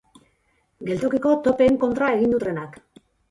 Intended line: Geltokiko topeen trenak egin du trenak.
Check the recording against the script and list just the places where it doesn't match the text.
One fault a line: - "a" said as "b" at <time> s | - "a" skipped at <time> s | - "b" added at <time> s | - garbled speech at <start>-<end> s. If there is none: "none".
- "trenak" said as "kontra" at 1.9 s